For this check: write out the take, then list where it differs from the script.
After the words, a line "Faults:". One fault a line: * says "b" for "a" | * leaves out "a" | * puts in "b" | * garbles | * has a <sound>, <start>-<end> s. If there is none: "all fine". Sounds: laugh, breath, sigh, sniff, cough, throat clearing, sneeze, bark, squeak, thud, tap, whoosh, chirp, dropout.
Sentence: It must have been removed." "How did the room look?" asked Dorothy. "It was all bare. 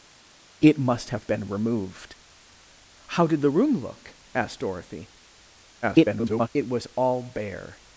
It must have been removed." "How did the room look?" asked Dorothy. [garbled] "It was all bare.
Faults:
* garbles